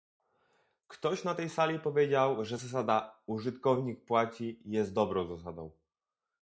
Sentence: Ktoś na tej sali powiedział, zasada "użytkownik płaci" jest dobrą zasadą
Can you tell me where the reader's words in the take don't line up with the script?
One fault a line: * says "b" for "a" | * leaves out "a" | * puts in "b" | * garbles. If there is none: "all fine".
* puts in "że"